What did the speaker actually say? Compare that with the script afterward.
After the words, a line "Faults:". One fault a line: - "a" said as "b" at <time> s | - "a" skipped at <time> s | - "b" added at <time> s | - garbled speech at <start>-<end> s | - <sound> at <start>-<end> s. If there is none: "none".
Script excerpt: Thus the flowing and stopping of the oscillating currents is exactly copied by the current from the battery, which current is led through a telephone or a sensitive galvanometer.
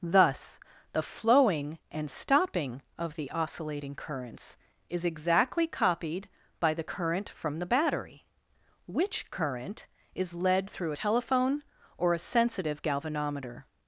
Thus the flowing and stopping of the oscillating currents is exactly copied by the current from the battery, which current is led through telephone or a sensitive galvanometer.
Faults:
- "a" skipped at 10.9 s